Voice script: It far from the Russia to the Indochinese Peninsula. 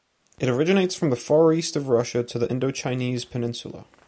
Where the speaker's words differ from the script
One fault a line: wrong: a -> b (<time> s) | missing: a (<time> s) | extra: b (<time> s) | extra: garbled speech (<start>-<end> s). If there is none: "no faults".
wrong: far -> originates (0.5 s)
extra: far east of (1.1 s)